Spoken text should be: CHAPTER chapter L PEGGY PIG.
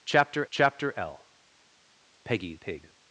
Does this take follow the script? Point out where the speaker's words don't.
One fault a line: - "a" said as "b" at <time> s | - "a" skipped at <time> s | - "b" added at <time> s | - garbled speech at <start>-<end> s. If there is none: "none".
none